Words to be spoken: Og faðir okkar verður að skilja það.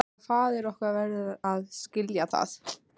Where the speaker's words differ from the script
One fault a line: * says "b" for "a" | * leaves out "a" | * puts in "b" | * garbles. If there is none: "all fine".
all fine